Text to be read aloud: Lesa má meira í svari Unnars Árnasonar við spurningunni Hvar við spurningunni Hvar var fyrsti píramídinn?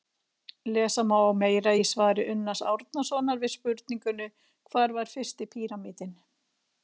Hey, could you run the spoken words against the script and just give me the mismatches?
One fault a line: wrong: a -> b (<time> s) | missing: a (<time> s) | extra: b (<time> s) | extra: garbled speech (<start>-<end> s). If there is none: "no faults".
missing: við spurningunni Hvar (5.0 s)